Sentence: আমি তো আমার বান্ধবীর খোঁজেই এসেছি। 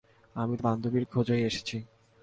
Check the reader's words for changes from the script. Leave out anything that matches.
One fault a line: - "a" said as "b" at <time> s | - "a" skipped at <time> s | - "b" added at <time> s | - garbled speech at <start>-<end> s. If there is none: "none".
- "আমার" skipped at 0.6 s